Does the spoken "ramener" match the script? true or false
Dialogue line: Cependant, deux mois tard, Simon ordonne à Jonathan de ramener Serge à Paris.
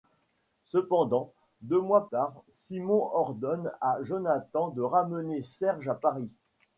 true